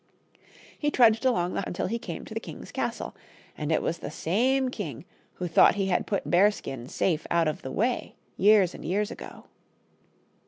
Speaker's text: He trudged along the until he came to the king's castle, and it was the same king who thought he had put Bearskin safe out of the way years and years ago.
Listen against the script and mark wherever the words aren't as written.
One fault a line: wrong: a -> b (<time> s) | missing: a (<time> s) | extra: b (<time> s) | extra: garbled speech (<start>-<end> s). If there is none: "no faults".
no faults